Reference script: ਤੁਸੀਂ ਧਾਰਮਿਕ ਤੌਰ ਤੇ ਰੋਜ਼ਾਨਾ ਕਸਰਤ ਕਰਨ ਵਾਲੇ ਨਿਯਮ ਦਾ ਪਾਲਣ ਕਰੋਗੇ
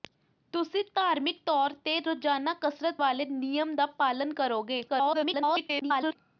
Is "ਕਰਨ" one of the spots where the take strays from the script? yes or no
yes